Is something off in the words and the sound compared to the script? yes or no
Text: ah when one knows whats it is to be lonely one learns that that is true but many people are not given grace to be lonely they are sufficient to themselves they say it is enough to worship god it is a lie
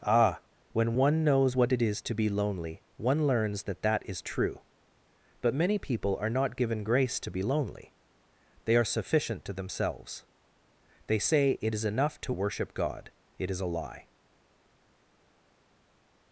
yes